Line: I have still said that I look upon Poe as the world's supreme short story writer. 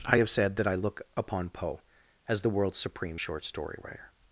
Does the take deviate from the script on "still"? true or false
true